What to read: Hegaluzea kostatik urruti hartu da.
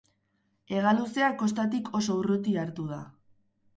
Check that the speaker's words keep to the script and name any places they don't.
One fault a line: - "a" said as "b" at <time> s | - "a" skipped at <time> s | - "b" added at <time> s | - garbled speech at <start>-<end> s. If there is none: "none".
- "oso" added at 2.0 s